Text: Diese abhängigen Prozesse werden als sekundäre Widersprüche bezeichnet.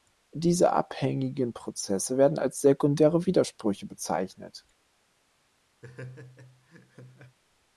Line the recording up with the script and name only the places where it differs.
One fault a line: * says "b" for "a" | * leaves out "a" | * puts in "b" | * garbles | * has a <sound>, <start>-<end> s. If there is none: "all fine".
* has a laugh, 5.8-7.4 s